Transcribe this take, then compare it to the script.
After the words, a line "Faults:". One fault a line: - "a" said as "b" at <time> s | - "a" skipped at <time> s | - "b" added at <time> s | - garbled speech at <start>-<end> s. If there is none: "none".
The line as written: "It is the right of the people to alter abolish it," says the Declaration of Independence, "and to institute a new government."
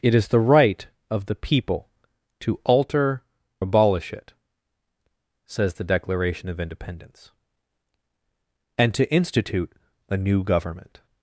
"It is the right of the people to alter abolish it," says the Declaration of Independence, "and to institute a new government."
Faults:
none